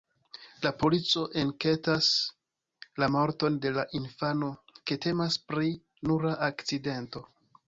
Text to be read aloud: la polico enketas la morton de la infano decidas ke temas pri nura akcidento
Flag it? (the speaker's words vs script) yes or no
yes